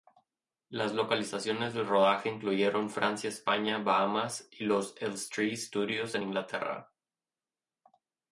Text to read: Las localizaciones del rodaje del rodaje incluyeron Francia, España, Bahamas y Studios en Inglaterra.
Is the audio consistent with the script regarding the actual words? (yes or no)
no